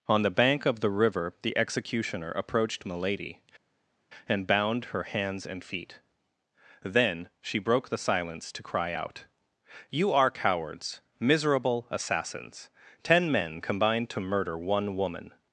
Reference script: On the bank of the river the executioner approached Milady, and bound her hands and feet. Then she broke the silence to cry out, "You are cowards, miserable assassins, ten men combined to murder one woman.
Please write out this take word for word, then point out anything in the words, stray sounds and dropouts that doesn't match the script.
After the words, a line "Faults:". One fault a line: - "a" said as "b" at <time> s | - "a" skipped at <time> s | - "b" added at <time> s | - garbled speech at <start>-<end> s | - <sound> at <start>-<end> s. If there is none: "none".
On the bank of the river the executioner approached Milady, and bound her hands and feet. Then she broke the silence to cry out, "You are cowards, miserable assassins, ten men combined to murder one woman.
Faults:
none